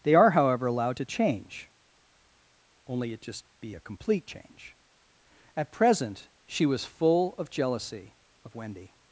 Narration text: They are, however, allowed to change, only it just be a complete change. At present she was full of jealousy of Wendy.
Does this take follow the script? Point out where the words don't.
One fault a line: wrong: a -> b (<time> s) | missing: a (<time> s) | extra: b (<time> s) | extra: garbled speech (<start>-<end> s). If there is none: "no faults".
no faults